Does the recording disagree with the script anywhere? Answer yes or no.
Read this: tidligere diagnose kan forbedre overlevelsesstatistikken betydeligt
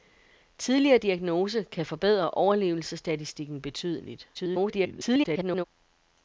yes